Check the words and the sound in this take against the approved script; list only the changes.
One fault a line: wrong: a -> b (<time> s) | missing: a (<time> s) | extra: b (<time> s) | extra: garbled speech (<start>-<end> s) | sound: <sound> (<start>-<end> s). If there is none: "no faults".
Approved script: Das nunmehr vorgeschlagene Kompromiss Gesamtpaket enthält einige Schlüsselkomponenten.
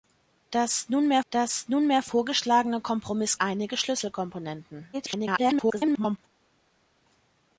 extra: das nunmehr (1.3 s)
missing: Gesamtpaket enthält (3.4 s)
extra: garbled speech (4.9-6.2 s)